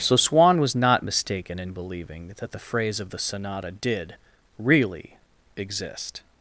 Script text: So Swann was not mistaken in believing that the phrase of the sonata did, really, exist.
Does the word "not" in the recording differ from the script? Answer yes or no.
no